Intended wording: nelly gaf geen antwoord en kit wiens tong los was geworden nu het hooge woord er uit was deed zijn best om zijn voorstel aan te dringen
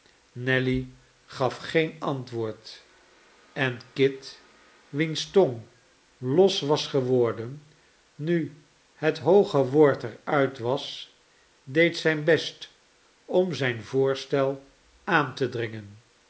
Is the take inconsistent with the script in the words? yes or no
no